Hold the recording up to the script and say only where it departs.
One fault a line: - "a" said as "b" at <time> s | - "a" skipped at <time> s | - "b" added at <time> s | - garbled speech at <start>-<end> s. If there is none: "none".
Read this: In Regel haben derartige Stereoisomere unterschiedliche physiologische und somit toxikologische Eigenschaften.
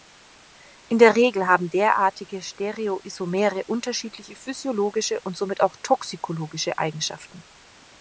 - "der" added at 1.0 s
- "auch" added at 5.6 s